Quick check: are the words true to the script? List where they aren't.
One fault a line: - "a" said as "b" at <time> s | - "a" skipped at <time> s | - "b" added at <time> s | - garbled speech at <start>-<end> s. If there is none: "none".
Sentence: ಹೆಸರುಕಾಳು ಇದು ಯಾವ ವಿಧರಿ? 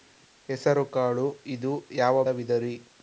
none